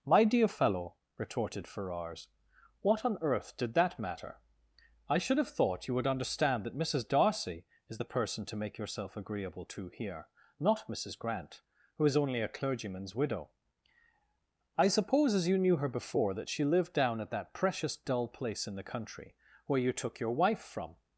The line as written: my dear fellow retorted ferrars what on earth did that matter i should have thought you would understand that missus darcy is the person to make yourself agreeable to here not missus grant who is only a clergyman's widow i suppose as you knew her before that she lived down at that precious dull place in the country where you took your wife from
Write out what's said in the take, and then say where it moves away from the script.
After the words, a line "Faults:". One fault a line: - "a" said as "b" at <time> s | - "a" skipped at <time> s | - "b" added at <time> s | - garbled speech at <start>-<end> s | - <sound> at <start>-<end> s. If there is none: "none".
my dear fellow retorted ferrars what on earth did that matter i should have thought you would understand that missus darcy is the person to make yourself agreeable to here not missus grant who is only a clergyman's widow i suppose as you knew her before that she lived down at that precious dull place in the country where you took your wife from
Faults:
none